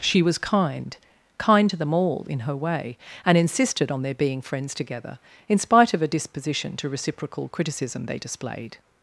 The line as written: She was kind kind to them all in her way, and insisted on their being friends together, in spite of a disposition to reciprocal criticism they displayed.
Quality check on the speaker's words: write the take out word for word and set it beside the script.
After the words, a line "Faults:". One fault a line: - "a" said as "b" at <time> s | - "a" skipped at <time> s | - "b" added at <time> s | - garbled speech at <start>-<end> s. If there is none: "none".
She was kind kind to them all in her way, and insisted on their being friends together, in spite of a disposition to reciprocal criticism they displayed.
Faults:
none